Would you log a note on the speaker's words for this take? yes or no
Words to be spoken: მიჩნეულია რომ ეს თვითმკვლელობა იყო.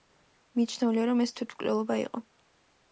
no